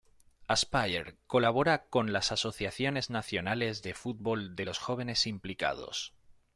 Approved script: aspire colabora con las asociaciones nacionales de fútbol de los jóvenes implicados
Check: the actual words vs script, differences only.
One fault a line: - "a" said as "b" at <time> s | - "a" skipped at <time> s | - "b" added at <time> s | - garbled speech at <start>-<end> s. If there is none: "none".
none